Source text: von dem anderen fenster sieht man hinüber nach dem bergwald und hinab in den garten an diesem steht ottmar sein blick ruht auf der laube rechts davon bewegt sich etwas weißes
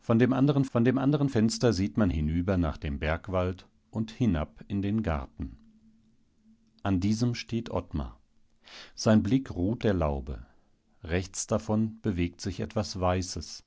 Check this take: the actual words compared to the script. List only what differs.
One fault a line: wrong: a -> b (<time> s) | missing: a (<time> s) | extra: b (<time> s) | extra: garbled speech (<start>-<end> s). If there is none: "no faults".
extra: von dem anderen (0.7 s)
missing: auf (9.8 s)